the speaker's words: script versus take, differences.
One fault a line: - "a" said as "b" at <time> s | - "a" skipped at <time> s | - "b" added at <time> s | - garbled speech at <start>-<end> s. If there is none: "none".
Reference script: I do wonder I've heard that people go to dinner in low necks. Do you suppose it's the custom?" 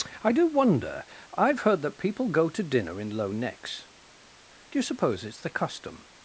none